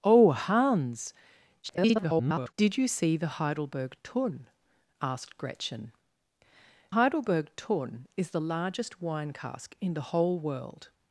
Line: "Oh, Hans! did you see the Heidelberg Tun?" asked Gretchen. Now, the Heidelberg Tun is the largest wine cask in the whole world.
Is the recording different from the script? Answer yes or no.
yes